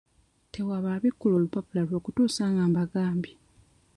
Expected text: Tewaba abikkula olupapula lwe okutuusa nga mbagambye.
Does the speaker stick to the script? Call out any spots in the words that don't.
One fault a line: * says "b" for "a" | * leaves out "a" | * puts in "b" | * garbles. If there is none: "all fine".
all fine